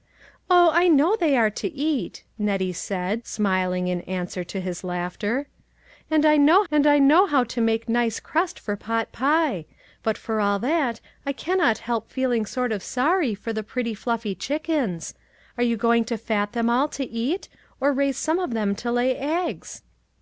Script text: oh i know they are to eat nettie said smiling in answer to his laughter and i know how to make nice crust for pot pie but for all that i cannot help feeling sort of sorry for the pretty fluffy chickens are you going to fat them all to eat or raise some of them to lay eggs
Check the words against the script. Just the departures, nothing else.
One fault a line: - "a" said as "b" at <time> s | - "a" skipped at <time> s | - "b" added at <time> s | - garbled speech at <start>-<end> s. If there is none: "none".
- "and i know" added at 6.7 s